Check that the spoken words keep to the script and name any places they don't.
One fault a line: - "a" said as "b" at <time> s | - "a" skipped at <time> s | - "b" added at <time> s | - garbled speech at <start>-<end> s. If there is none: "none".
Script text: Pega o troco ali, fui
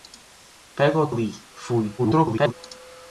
- "troco" skipped at 1.1 s
- garbled speech at 2.0-2.5 s